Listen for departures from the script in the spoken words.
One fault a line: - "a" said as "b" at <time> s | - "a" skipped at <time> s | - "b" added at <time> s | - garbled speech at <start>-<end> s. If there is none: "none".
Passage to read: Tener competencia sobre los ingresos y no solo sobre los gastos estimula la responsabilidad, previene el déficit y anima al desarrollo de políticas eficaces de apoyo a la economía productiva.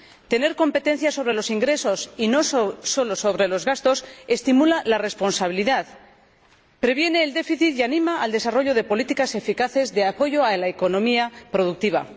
none